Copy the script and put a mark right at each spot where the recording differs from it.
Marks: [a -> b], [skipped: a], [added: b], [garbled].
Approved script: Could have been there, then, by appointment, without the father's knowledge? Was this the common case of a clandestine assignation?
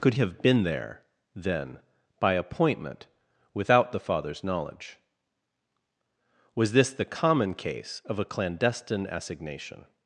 Could have been there, then, by appointment, without the father's knowledge? Was this the common case of a clandestine assignation?